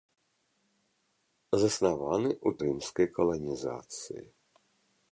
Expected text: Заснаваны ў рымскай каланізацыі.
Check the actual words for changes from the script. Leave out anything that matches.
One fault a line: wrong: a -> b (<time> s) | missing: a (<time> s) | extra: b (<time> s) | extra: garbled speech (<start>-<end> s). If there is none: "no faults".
no faults